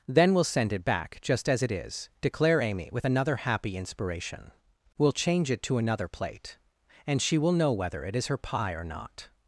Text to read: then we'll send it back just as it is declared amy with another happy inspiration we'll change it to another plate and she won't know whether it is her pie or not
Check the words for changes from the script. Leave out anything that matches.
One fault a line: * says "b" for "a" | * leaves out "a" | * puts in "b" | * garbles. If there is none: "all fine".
* says "declare" for "declared"
* says "will" for "won't"